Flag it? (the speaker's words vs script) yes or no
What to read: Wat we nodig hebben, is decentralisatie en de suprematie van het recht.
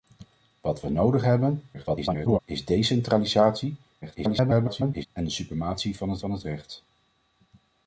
yes